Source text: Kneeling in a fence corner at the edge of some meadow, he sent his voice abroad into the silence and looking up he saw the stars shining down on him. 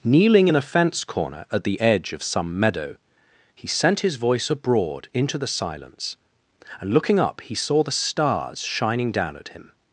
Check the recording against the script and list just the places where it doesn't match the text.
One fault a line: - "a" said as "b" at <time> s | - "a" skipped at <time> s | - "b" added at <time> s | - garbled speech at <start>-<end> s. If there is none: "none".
- "on" said as "at" at 9.4 s